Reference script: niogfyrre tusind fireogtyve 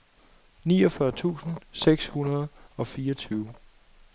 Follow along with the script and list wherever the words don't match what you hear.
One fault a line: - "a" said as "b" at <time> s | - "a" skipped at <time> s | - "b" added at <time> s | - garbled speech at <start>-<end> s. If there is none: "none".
- "seks hundrede og" added at 1.7 s